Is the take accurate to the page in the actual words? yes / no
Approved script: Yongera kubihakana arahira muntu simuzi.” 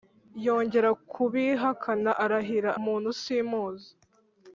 yes